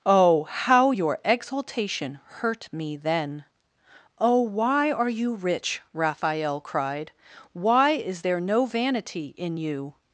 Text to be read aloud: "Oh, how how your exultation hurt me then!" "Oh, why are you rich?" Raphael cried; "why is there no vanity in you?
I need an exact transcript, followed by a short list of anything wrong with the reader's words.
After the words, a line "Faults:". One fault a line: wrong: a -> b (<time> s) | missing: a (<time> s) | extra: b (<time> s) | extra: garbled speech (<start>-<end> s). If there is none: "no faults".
"Oh, how your exultation hurt me then!" "Oh, why are you rich?" Raphael cried; "why is there no vanity in you?
Faults:
missing: how (0.9 s)